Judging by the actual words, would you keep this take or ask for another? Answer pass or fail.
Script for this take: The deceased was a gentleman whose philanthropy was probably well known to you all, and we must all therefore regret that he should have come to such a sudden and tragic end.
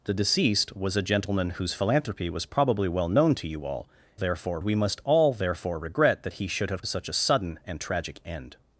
fail